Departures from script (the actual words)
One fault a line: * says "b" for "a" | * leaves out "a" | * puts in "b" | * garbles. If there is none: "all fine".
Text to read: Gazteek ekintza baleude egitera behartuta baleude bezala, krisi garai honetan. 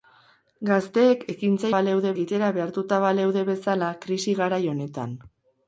all fine